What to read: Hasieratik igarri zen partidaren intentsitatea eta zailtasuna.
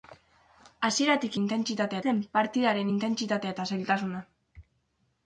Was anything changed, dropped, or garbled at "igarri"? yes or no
yes